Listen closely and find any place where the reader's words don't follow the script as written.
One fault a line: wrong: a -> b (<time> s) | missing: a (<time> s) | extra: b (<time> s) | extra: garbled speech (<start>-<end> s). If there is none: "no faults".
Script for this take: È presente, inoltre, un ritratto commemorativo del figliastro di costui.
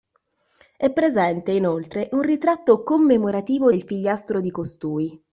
no faults